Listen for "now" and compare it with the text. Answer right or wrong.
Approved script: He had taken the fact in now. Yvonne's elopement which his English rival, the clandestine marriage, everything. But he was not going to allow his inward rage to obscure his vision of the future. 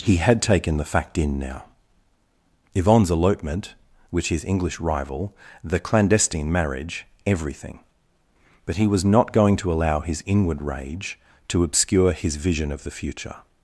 right